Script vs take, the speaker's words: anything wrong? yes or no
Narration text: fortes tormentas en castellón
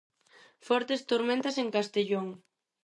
no